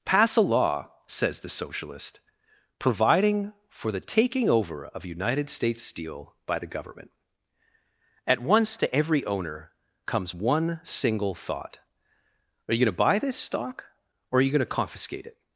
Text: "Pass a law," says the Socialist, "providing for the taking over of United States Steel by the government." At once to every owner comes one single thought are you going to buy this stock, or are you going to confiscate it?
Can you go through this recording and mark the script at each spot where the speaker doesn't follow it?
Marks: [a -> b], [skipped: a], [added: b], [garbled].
"Pass a law," says the Socialist, "providing for the taking over of United States Steel by the government." At once to every owner comes one single thought are you going to buy this stock, or are you going to confiscate it?